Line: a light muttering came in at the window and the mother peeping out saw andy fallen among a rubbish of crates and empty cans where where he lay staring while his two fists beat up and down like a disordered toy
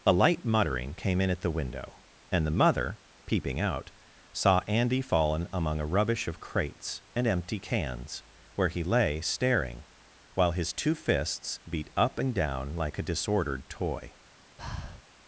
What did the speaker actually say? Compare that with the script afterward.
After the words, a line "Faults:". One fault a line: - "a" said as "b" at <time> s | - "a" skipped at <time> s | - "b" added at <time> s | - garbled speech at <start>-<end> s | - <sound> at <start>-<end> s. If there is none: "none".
a light muttering came in at the window and the mother peeping out saw andy fallen among a rubbish of crates and empty cans where he lay staring while his two fists beat up and down like a disordered toy
Faults:
- "where" skipped at 8.7 s
- breath at 14.6-15.0 s